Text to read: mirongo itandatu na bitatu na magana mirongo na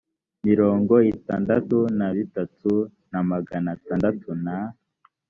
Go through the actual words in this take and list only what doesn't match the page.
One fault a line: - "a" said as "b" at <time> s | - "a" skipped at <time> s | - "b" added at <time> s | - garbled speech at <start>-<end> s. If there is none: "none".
- "mirongo" said as "atandatu" at 3.8 s